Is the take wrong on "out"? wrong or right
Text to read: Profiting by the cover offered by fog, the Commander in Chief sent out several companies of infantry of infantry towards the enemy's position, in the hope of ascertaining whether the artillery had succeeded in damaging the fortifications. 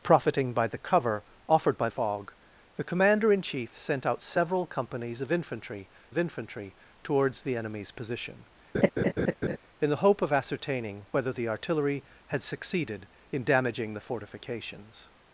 right